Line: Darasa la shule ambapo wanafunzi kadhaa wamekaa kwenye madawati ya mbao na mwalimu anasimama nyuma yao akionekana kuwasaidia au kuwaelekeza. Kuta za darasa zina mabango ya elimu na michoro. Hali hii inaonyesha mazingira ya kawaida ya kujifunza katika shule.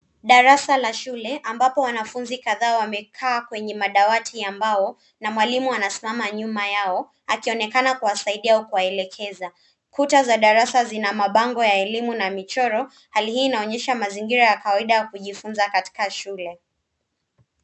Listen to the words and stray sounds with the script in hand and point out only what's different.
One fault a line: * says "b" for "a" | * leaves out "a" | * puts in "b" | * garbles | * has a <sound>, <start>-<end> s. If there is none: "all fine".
all fine